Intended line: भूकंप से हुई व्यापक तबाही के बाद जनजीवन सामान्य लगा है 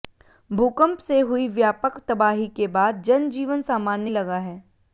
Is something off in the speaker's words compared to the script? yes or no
no